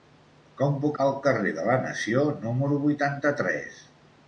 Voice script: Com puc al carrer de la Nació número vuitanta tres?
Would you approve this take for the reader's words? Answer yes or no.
yes